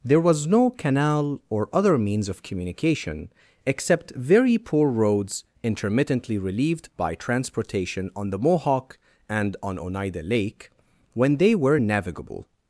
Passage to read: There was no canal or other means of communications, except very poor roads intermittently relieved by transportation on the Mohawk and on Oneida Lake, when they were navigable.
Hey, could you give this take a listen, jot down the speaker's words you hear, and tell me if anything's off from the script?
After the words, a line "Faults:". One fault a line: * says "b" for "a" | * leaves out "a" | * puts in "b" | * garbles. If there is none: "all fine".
There was no canal or other means of communication, except very poor roads intermittently relieved by transportation on the Mohawk and on Oneida Lake, when they were navigable.
Faults:
* says "communication" for "communications"